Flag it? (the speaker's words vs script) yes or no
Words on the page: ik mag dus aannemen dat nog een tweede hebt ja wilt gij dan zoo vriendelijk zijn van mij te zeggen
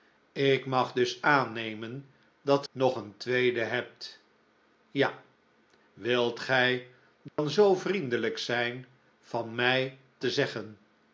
no